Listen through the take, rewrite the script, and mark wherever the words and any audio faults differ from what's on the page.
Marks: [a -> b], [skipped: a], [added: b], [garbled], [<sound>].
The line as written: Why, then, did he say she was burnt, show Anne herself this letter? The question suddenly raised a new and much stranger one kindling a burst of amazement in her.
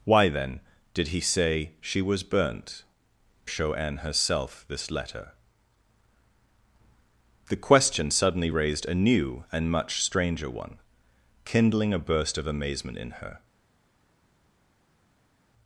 Why, then, did he say she was burnt, show Anne herself this letter? The question suddenly raised a new and much stranger one kindling a burst of amazement in her.